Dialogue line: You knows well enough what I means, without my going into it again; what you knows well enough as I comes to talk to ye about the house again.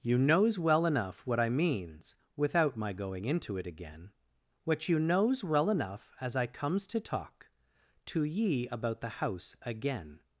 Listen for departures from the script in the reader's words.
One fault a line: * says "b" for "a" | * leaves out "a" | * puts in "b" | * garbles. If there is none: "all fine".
all fine